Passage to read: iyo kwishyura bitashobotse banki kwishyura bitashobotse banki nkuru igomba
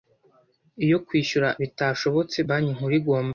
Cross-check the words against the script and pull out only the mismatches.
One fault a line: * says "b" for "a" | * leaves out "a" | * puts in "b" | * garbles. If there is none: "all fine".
* leaves out "kwishyura bitashobotse banki"